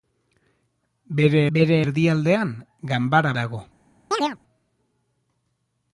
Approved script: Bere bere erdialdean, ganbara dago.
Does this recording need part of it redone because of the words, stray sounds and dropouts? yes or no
yes